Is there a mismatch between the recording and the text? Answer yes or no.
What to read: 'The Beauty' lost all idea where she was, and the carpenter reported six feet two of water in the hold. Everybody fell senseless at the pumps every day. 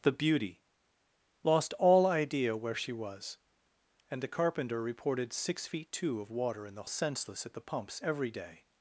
yes